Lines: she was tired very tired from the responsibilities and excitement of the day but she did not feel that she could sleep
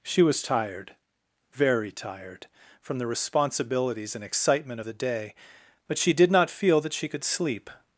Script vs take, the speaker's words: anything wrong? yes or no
no